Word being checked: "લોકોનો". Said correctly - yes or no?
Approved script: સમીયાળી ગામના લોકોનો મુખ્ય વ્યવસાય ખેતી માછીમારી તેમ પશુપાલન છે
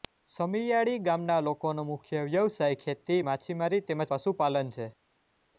yes